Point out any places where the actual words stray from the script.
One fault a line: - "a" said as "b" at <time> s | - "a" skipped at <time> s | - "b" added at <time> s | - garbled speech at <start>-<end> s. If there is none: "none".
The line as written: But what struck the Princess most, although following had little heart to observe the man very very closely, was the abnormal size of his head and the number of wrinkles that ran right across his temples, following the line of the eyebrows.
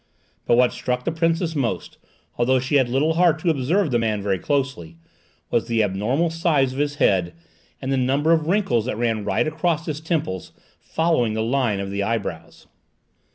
- "following" said as "she" at 2.6 s
- "very" skipped at 4.4 s